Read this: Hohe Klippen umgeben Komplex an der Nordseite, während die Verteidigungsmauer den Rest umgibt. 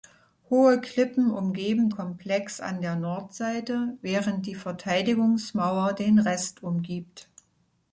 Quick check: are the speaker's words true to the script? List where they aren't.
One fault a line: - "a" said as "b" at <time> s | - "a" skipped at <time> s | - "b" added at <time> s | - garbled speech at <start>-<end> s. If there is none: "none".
none